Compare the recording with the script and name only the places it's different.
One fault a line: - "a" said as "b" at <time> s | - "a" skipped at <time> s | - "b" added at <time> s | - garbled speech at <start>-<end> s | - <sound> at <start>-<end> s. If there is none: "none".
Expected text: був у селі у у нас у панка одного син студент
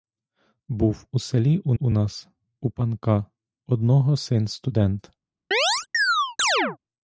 - chirp at 5.5-6.8 s